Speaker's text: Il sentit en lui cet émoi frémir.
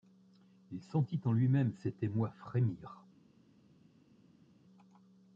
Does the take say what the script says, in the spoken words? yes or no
no